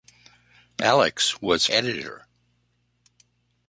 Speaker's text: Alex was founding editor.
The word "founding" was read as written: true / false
false